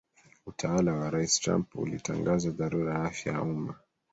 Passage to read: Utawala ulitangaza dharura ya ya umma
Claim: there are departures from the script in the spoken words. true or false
true